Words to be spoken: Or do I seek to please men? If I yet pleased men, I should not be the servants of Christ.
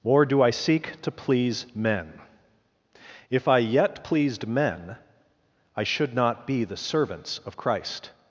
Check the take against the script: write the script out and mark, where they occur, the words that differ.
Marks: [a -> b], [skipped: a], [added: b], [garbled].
Or do I seek to please men? If I yet pleased men, I should not be the servants of Christ.